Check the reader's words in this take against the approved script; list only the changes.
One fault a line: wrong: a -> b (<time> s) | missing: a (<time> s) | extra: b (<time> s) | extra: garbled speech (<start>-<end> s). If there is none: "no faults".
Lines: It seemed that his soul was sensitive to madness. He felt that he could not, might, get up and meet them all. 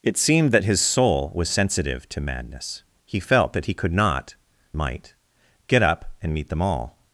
no faults